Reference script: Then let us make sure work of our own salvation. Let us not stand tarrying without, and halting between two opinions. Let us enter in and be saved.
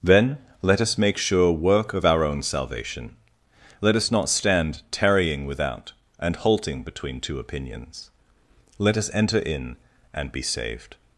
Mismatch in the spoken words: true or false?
false